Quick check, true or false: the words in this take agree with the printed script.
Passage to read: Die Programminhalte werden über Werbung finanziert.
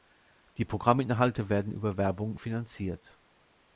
true